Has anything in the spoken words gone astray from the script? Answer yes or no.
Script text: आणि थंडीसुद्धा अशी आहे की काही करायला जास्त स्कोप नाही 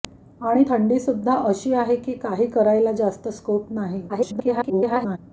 yes